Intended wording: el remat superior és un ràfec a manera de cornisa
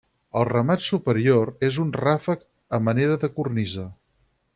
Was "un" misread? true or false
false